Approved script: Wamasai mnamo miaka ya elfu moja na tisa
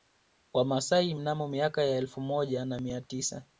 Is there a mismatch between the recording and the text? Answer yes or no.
yes